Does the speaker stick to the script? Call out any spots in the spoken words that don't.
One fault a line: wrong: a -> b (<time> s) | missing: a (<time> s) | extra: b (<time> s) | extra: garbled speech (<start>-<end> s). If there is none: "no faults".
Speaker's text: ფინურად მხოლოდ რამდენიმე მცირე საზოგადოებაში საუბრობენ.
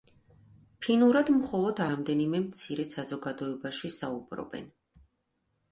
no faults